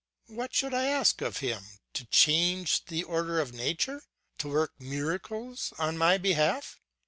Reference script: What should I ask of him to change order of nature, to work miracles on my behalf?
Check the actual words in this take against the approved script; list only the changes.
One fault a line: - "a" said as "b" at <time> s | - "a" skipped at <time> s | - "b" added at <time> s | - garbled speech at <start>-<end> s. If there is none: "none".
- "the" added at 2.9 s